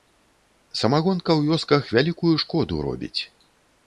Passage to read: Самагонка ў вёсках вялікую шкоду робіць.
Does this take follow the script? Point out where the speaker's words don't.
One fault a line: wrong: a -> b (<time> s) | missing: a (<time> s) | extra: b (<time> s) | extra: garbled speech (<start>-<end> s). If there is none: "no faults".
no faults